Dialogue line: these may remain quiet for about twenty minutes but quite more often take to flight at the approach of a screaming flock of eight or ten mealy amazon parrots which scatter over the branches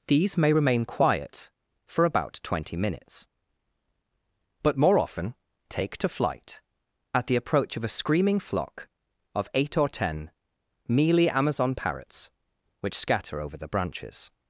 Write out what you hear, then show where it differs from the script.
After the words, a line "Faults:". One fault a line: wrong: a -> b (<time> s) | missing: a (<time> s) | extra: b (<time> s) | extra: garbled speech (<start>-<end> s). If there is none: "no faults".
these may remain quiet for about twenty minutes but more often take to flight at the approach of a screaming flock of eight or ten mealy amazon parrots which scatter over the branches
Faults:
missing: quite (4.8 s)